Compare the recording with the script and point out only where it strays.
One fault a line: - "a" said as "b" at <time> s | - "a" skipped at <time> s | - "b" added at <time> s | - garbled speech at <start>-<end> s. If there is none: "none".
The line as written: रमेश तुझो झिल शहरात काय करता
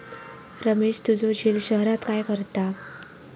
none